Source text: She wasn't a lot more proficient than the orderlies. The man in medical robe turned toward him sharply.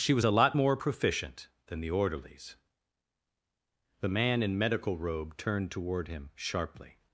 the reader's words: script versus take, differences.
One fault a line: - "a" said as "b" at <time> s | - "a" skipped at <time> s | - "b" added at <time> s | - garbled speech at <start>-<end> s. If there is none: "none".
- "wasn't" said as "was" at 0.1 s